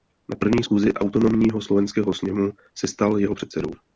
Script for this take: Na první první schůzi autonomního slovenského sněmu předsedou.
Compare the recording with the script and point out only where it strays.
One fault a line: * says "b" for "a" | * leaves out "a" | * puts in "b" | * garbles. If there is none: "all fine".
* leaves out "první"
* puts in "se stal jeho"